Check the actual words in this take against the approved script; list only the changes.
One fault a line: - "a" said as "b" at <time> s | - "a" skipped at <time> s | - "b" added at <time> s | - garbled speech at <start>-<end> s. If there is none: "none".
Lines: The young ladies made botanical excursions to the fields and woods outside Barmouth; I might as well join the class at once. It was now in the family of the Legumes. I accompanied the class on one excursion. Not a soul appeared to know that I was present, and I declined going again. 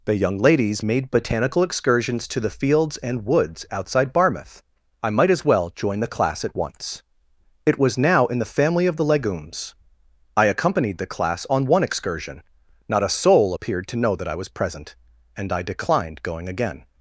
none